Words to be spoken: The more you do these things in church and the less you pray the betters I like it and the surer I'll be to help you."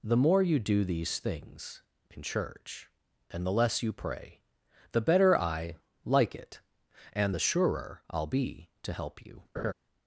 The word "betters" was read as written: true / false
false